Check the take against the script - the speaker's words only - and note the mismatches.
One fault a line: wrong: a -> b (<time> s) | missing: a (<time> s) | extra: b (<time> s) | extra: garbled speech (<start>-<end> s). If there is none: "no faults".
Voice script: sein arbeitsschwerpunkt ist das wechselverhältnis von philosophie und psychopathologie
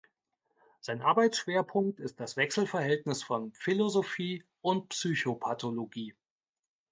no faults